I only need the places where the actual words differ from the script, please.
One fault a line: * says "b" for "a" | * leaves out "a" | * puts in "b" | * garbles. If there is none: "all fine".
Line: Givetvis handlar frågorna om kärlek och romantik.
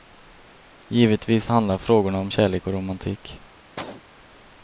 all fine